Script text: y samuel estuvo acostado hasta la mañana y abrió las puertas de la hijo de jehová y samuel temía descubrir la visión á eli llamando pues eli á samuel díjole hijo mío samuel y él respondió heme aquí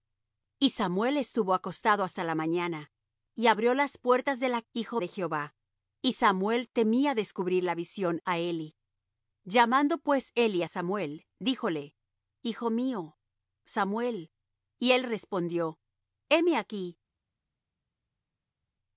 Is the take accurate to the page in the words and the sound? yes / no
yes